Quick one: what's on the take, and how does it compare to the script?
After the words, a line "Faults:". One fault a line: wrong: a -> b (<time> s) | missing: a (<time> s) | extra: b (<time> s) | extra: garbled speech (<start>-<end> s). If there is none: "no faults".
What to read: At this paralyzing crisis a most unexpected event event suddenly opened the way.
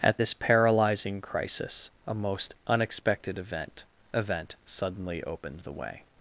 At this paralyzing crisis a most unexpected event event suddenly opened the way.
Faults:
no faults